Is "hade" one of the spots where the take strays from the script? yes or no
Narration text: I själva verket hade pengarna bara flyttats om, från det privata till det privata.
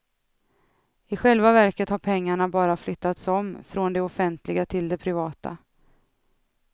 yes